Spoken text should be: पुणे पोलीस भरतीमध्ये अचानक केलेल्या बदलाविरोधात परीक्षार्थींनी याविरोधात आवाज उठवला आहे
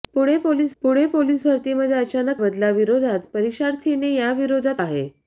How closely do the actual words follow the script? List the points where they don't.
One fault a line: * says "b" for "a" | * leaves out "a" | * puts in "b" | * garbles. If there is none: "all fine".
* puts in "पुणे पोलीस"
* leaves out "केलेल्या"
* leaves out "आवाज उठवला"